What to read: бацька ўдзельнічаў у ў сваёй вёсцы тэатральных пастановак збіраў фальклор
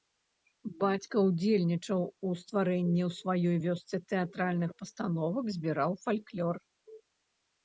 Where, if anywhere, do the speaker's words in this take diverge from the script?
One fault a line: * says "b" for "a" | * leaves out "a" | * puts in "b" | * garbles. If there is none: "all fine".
* puts in "стварэнні"